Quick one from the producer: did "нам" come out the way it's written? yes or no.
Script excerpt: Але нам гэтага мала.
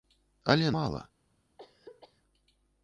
no